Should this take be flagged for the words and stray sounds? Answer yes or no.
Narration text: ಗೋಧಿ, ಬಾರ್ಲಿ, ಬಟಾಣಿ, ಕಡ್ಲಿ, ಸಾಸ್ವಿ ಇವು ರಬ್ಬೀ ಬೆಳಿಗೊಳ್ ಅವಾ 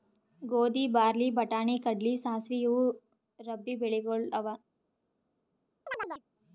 yes